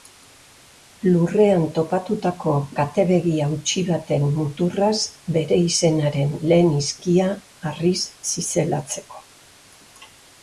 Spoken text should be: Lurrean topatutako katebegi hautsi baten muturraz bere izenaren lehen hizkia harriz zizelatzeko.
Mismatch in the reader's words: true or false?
false